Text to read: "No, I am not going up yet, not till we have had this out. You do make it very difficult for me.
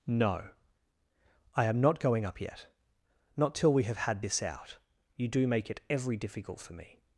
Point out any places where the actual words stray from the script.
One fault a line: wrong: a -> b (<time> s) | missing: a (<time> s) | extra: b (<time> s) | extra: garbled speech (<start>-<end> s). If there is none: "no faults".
wrong: very -> every (5.9 s)